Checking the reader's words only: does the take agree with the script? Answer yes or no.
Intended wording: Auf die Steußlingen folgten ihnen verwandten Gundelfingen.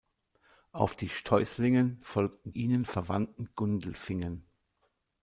yes